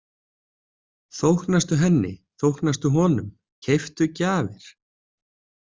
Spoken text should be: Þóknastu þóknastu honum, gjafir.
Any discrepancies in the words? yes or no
yes